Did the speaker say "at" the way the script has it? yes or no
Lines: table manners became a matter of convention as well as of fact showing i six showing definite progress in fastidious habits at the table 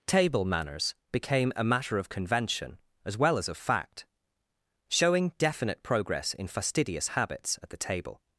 yes